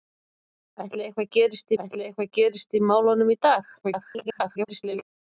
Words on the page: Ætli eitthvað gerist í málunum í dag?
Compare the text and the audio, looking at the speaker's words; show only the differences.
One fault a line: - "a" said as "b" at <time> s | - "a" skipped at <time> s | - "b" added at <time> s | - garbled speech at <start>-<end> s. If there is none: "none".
- "ætli eitthvað gerist" added at 1.8 s
- garbled speech at 3.8-5.0 s